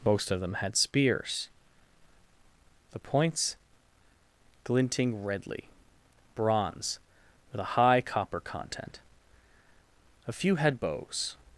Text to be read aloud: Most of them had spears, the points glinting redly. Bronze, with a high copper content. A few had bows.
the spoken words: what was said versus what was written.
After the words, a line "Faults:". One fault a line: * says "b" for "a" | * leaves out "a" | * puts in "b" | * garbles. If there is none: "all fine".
Most of them had spears, the points glinting redly. Bronze, with a high copper content. A few had bows.
Faults:
all fine